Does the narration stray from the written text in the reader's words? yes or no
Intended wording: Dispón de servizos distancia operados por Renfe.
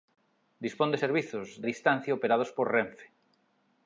no